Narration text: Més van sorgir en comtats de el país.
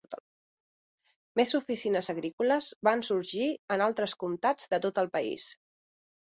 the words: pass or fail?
fail